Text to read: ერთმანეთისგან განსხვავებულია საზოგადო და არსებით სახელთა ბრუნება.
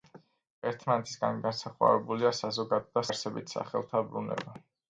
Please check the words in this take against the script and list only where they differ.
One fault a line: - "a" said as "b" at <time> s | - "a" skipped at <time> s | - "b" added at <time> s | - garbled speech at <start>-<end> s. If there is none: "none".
none